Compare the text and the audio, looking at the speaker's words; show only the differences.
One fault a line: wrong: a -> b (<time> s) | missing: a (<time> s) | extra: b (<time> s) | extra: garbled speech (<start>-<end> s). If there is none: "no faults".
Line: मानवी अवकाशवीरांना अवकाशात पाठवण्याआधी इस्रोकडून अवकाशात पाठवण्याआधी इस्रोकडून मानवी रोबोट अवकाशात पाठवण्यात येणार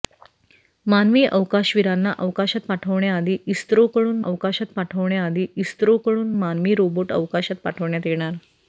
no faults